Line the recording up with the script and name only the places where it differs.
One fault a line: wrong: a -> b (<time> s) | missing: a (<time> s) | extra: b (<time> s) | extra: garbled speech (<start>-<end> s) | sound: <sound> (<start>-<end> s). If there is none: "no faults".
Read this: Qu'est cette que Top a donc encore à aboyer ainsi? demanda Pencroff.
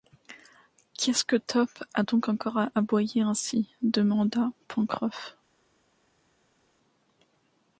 wrong: cette -> ce (1.1 s)